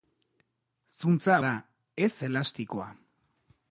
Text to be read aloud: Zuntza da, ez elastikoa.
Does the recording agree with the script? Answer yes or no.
yes